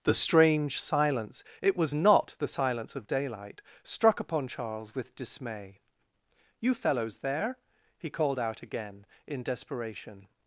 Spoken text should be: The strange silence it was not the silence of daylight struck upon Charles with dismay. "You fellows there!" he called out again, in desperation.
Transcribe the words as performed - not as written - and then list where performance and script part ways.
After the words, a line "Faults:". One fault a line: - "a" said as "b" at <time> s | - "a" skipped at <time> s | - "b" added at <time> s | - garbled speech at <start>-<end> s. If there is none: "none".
The strange silence it was not the silence of daylight struck upon Charles with dismay. "You fellows there!" he called out again, in desperation.
Faults:
none